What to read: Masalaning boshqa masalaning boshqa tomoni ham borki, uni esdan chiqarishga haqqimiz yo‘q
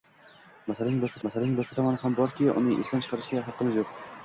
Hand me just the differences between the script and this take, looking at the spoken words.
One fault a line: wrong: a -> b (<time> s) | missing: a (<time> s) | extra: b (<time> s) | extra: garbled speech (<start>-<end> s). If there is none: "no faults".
no faults